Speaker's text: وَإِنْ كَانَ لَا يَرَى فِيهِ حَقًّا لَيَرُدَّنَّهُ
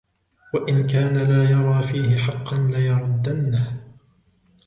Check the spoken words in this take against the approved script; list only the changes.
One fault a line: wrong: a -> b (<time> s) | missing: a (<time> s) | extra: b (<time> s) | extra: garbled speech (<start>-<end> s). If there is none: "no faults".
no faults